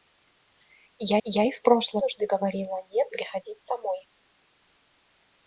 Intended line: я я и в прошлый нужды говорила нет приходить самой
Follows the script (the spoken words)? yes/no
yes